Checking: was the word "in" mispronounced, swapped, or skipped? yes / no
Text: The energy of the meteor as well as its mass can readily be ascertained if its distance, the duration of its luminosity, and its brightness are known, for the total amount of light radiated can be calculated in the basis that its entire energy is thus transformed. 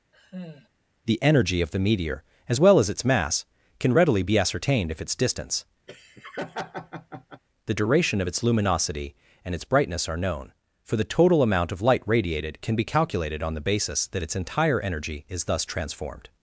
yes